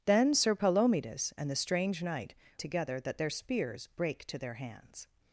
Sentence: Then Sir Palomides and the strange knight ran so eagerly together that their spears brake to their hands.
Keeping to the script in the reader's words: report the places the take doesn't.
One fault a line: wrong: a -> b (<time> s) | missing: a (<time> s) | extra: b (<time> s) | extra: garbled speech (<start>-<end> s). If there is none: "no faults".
missing: ran so eagerly (2.3 s)